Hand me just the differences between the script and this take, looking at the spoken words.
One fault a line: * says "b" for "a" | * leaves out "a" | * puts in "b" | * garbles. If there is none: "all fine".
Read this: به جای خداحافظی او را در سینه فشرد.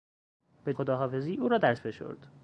* leaves out "جای"
* leaves out "سینه"